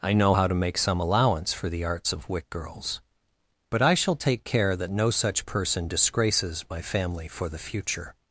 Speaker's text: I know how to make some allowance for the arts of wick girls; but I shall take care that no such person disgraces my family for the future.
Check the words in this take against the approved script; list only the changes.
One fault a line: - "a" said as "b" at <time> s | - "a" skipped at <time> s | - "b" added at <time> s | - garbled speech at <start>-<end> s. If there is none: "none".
none